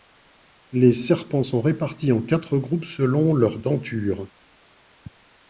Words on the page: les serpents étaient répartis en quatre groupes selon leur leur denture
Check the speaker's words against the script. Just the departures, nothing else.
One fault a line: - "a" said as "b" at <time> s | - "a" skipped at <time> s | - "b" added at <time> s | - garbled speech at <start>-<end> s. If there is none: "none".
- "étaient" said as "sont" at 1.4 s
- "leur" skipped at 3.6 s